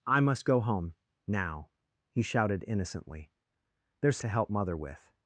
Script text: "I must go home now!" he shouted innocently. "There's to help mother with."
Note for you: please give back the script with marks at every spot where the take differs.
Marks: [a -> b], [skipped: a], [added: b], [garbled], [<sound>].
"I must go home now!" he shouted innocently. "There's to help mother with."